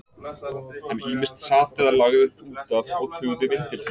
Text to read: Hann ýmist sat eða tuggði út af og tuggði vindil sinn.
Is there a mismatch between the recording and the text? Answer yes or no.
yes